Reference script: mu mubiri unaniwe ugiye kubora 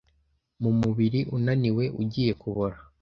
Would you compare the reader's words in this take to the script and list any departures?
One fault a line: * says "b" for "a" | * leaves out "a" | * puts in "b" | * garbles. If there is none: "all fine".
all fine